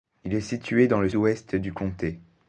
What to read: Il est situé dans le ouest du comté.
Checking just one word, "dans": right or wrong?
right